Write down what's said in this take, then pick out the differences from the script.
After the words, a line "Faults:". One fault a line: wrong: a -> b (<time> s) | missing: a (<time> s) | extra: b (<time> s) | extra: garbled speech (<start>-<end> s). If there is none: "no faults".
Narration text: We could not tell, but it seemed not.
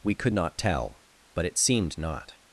We could not tell, but it seemed not.
Faults:
no faults